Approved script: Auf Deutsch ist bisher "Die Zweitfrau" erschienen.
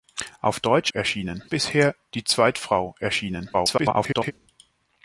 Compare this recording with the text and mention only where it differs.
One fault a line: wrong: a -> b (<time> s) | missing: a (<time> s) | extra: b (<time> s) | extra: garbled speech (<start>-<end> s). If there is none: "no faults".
wrong: ist -> erschienen (0.9 s)
extra: garbled speech (3.5-4.3 s)